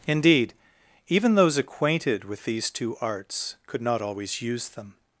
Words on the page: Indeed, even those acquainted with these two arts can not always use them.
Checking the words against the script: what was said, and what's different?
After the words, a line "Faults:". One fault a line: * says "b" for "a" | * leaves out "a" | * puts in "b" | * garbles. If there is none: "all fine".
Indeed, even those acquainted with these two arts could not always use them.
Faults:
* says "could" for "can"